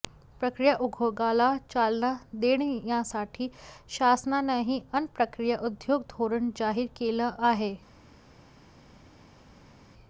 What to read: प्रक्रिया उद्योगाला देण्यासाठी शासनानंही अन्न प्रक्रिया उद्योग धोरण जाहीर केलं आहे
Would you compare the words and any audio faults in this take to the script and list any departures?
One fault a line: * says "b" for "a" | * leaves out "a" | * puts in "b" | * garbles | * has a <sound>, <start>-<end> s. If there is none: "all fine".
* puts in "चालना"